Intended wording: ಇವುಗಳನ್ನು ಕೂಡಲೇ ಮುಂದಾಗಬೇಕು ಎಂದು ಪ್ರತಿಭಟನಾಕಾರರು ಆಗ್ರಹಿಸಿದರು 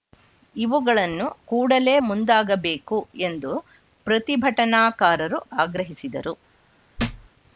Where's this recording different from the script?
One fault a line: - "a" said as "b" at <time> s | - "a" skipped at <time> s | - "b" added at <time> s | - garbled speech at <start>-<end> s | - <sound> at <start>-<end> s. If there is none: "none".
- thud at 7.0-7.3 s